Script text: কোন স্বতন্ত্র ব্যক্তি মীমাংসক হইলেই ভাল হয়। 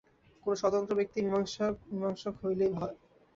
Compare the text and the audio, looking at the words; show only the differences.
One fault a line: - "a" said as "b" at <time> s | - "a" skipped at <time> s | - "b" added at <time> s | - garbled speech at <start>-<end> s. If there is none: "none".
- "ভাল" skipped at 2.7 s